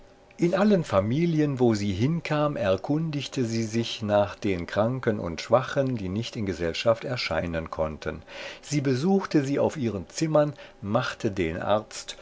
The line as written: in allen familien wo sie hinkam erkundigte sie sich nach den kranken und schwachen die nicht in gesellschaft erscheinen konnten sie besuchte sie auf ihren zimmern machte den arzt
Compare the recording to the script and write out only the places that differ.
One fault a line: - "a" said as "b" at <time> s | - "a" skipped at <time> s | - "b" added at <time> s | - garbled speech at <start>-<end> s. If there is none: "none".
none